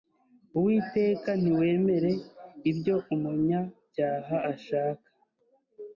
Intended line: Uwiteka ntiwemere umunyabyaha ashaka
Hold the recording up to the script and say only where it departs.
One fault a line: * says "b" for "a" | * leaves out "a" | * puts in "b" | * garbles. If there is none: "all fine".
* puts in "ibyo"